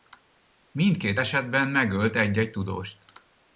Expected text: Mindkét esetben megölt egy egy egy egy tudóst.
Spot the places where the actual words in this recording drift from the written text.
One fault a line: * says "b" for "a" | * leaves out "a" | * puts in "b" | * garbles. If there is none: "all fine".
* leaves out "egy egy"